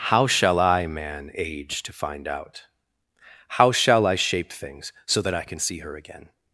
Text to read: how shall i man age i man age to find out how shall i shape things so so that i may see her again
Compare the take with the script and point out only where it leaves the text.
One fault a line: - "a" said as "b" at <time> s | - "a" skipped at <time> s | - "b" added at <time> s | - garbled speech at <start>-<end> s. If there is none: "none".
- "i man age" skipped at 1.8 s
- "so" skipped at 5.2 s
- "may" said as "can" at 5.4 s